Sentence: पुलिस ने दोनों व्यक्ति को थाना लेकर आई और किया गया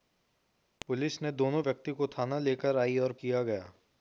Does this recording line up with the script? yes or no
yes